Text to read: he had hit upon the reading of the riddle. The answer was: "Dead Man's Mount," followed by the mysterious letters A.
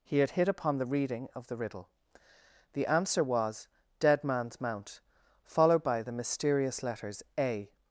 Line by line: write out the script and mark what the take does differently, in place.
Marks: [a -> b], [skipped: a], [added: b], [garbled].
he had hit upon the reading of the riddle. The answer was: "Dead Man's Mount," followed by the mysterious letters A.